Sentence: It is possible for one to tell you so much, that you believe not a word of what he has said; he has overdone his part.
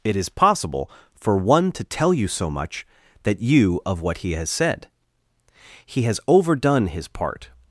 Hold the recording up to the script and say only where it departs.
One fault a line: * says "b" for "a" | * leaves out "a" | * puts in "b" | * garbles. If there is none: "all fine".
* leaves out "believe not a word"